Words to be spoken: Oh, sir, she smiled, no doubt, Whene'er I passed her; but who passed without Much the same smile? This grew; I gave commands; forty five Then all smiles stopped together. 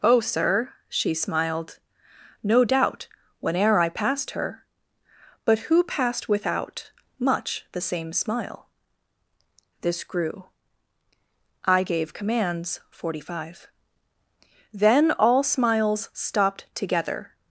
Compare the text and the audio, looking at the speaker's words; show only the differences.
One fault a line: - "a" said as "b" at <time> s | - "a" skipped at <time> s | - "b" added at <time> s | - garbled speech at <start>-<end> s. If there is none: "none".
none